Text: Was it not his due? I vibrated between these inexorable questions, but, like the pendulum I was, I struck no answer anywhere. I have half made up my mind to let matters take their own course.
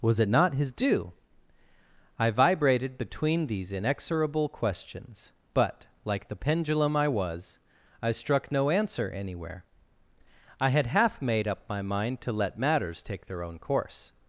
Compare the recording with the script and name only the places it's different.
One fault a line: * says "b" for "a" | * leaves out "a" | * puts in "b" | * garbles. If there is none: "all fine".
* says "had" for "have"